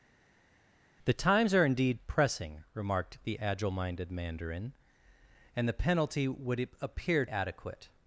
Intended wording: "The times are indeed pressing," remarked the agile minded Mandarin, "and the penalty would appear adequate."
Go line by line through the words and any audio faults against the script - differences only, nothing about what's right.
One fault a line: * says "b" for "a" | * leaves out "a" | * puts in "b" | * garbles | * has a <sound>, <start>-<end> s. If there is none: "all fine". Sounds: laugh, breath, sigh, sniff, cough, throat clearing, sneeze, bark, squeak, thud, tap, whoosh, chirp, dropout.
all fine